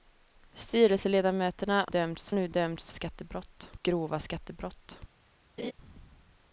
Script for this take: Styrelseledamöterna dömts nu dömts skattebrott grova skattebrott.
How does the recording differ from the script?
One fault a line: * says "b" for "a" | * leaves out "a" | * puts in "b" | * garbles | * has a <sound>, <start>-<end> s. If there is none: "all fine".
* has a laugh, 5.6-5.7 s